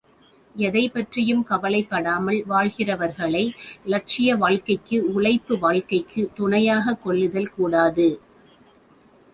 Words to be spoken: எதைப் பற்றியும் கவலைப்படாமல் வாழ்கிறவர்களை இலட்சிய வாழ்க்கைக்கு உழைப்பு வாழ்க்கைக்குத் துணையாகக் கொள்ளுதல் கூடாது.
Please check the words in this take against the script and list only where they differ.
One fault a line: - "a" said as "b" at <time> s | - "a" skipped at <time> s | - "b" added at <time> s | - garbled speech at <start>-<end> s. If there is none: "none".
none